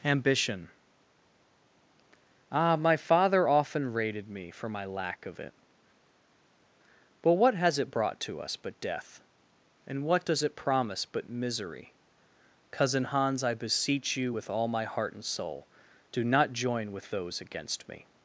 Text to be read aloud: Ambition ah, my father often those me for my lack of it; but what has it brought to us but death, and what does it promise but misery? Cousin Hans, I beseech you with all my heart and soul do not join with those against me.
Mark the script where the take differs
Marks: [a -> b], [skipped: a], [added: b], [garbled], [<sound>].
Ambition ah, my father often [those -> rated] me for my lack of it; but what has it brought to us but death, and what does it promise but misery? Cousin Hans, I beseech you with all my heart and soul do not join with those against me.